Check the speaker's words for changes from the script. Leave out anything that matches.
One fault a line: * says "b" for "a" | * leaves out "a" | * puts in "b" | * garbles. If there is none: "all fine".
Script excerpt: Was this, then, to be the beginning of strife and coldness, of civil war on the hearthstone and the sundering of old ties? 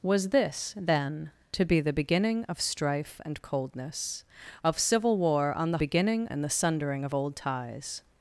* says "beginning" for "hearthstone"